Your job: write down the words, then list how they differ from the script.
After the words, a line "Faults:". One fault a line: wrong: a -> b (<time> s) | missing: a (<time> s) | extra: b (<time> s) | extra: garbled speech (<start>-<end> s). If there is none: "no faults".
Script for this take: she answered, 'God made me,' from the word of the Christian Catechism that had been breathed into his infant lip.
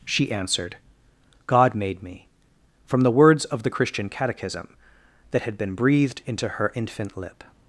she answered, 'God made me,' from the words of the Christian Catechism that had been breathed into her infant lip.
Faults:
wrong: word -> words (3.1 s)
wrong: his -> her (6.5 s)